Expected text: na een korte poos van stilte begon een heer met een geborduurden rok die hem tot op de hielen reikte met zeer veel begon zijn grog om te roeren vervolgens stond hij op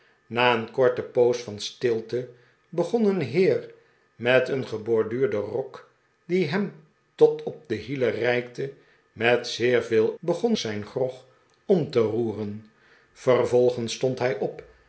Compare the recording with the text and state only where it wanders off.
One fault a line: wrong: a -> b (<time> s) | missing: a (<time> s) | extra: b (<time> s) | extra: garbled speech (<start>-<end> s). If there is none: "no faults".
no faults